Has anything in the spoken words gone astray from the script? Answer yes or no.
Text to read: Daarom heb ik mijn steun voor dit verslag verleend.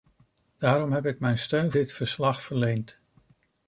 yes